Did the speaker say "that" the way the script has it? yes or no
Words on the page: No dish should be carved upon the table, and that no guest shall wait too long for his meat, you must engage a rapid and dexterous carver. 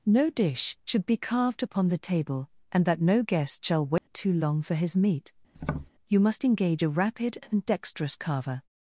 yes